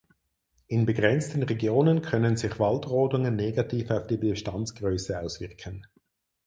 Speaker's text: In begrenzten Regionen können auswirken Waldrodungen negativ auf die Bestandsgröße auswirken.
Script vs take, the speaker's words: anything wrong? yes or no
yes